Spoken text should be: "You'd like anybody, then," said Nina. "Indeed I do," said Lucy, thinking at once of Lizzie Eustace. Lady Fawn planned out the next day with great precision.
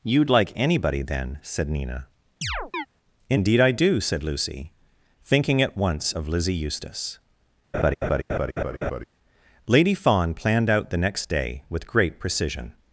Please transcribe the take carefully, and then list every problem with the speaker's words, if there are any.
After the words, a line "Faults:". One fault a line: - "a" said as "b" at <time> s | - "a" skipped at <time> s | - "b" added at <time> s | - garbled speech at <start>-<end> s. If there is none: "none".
"You'd like anybody, then," said Nina. "Indeed I do," said Lucy, thinking at once of Lizzie Eustace. Lady Fawn planned out the next day with great precision.
Faults:
none